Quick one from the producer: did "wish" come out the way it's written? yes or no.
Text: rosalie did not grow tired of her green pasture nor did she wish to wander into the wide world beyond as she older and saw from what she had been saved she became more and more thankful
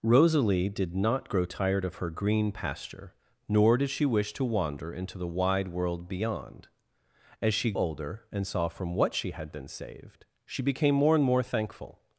yes